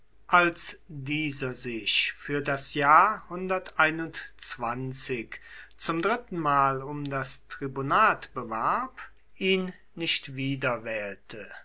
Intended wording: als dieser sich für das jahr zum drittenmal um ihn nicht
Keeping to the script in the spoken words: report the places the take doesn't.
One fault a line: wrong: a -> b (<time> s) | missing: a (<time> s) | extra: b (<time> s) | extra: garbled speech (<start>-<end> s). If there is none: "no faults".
extra: das tribunat bewarb (7.1 s)